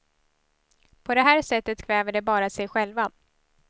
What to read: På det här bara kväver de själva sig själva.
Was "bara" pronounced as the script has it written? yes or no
no